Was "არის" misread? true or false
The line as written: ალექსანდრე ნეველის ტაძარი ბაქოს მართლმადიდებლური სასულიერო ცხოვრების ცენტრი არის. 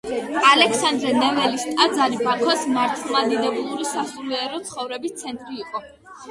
true